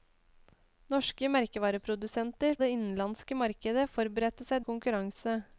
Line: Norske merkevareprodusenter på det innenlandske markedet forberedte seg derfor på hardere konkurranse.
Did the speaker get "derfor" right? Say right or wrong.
wrong